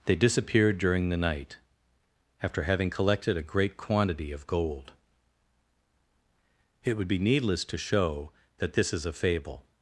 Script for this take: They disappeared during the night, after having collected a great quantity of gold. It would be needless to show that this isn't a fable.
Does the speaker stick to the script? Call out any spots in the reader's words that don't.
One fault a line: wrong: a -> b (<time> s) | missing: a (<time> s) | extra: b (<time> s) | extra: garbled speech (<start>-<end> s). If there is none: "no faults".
wrong: isn't -> is (8.9 s)